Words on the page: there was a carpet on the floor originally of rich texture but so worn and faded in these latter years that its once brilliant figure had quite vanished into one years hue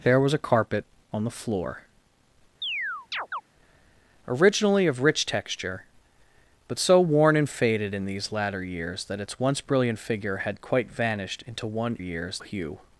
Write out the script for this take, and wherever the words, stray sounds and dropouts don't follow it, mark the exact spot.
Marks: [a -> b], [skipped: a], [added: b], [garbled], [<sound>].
there was a carpet on the floor [chirp] originally of rich texture but so worn and faded in these latter years that its once brilliant figure had quite vanished into one years hue